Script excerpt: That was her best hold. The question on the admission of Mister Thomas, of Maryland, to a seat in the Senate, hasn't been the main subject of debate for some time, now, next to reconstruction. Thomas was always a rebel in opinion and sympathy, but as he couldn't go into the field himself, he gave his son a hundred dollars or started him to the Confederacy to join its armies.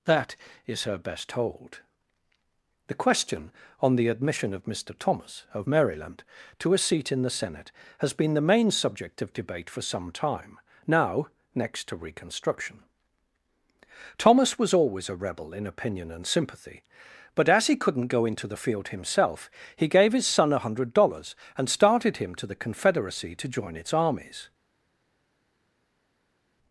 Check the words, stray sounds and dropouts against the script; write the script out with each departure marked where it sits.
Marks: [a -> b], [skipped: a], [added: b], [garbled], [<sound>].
That [was -> is] her best hold. The question on the admission of Mister Thomas, of Maryland, to a seat in the Senate, [hasn't -> has] been the main subject of debate for some time, now, next to reconstruction. Thomas was always a rebel in opinion and sympathy, but as he couldn't go into the field himself, he gave his son a hundred dollars [or -> and] started him to the Confederacy to join its armies.